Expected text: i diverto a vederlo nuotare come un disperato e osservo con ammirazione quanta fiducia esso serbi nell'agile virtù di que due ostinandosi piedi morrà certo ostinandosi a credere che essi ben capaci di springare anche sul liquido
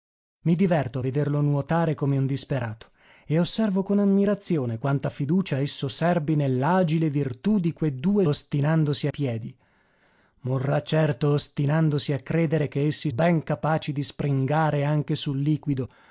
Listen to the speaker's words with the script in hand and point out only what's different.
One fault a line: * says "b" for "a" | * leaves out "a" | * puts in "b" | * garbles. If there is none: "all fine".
all fine